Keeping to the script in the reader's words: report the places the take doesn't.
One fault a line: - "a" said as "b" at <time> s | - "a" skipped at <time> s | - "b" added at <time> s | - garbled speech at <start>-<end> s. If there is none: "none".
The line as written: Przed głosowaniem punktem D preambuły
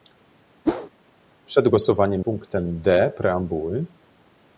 none